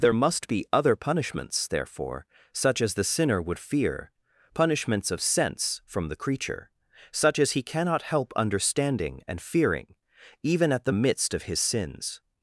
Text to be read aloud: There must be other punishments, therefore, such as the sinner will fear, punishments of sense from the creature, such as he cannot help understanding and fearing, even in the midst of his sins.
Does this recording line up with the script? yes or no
no